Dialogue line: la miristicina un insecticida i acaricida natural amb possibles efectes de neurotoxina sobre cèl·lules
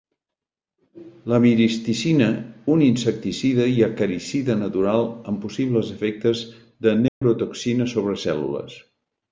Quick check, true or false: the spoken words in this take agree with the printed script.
true